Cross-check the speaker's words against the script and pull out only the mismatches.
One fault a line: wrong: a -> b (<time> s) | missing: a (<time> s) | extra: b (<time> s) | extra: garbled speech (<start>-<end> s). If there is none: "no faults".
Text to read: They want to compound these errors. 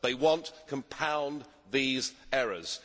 missing: to (0.5 s)